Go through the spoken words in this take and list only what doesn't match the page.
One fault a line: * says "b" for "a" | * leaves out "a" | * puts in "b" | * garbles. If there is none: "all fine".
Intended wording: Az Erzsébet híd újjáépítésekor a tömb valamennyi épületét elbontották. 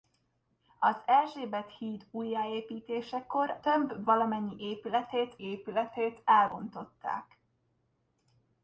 * leaves out "a"
* puts in "épületét"